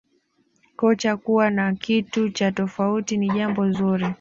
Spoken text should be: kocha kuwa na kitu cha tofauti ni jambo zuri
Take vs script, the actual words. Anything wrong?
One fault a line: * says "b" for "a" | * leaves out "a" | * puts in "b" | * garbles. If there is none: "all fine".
all fine